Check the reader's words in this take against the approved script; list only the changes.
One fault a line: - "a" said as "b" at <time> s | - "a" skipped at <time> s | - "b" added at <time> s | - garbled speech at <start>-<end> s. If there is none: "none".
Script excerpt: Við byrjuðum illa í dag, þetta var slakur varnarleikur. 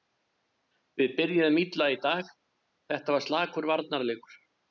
none